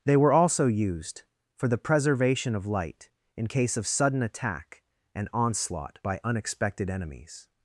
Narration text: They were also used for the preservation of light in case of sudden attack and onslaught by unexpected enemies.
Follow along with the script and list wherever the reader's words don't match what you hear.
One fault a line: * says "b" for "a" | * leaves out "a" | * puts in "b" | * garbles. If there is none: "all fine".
all fine